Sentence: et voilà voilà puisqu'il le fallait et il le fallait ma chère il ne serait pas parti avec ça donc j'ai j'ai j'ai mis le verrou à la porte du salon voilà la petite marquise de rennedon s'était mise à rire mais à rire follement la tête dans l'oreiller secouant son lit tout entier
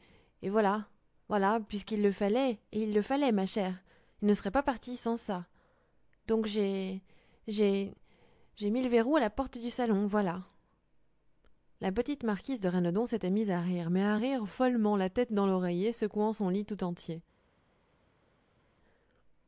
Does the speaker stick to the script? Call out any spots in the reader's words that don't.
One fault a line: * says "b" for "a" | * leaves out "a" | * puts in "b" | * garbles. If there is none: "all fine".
* says "sans" for "avec"